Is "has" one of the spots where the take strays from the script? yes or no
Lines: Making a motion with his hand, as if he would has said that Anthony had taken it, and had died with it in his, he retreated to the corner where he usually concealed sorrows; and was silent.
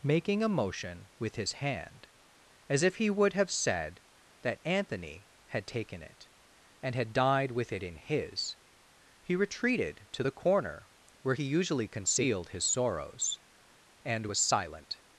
yes